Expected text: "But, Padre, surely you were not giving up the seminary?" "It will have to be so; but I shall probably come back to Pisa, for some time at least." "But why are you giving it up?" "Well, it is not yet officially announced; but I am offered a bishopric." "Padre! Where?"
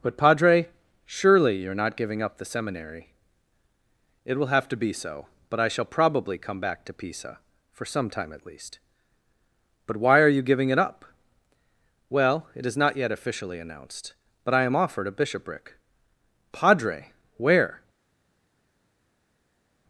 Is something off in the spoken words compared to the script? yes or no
yes